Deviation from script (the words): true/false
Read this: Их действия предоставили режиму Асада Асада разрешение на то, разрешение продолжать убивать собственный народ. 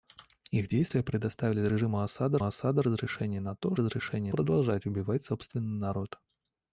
false